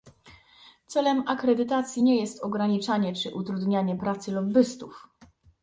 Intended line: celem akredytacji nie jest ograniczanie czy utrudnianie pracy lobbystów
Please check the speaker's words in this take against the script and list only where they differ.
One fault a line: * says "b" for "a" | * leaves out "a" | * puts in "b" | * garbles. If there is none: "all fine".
all fine